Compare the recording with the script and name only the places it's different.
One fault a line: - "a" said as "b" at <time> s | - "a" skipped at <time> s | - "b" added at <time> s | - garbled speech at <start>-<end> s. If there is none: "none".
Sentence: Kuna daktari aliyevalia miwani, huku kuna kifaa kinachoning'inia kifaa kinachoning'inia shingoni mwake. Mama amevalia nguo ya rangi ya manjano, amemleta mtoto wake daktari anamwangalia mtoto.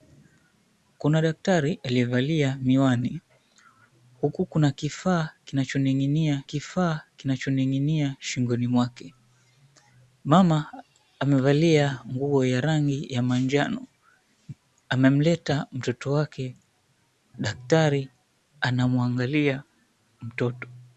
none